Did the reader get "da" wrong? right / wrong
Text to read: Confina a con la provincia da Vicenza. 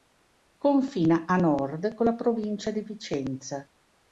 wrong